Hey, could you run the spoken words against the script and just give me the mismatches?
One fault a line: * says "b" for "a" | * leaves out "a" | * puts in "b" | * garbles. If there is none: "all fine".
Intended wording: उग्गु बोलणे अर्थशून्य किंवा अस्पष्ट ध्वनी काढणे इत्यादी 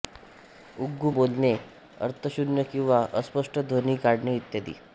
all fine